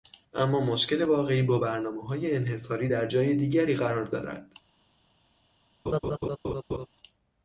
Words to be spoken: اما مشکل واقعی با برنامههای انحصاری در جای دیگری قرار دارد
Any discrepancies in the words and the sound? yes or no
yes